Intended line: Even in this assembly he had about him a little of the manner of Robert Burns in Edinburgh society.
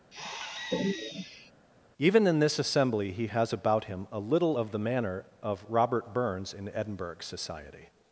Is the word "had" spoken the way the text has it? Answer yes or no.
no